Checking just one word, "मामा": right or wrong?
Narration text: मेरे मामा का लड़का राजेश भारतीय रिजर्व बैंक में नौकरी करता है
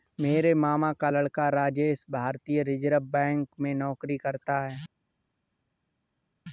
right